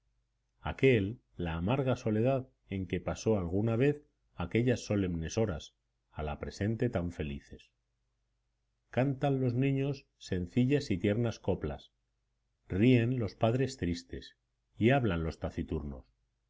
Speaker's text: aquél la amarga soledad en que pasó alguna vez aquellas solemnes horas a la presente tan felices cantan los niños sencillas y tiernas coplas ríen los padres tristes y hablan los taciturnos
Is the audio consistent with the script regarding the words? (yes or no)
yes